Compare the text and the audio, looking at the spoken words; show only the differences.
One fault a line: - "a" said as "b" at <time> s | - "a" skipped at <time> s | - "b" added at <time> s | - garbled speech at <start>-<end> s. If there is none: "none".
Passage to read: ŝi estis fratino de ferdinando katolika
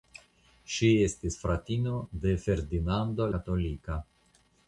none